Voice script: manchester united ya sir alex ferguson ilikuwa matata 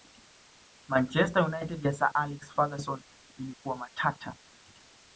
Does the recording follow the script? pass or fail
pass